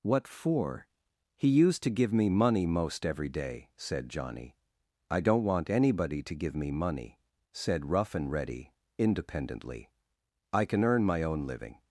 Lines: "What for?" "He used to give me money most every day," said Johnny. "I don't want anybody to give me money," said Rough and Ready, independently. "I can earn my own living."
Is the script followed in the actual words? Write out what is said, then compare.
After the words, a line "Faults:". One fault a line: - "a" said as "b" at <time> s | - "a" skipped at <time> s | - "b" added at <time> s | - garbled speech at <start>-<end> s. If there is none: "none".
"What for?" "He used to give me money most every day," said Johnny. "I don't want anybody to give me money," said Rough and Ready, independently. "I can earn my own living."
Faults:
none